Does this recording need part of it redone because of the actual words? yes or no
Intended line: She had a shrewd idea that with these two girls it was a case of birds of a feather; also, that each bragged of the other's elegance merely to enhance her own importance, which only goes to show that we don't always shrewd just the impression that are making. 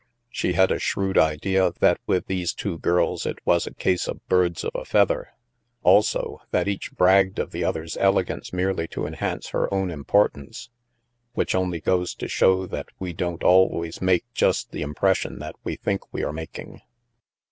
yes